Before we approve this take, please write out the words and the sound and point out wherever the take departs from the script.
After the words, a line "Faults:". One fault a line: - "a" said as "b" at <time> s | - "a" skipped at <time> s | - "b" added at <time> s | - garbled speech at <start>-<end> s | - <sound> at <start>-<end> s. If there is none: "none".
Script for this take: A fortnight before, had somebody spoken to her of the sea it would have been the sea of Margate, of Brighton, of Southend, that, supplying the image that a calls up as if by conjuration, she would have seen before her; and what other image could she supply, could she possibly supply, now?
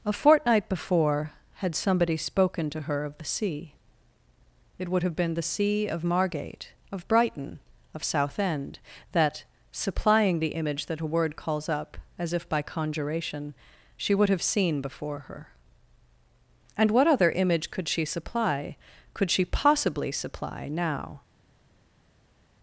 A fortnight before, had somebody spoken to her of the sea it would have been the sea of Margate, of Brighton, of Southend, that, supplying the image that a word calls up as if by conjuration, she would have seen before her; and what other image could she supply, could she possibly supply, now?
Faults:
- "word" added at 11.1 s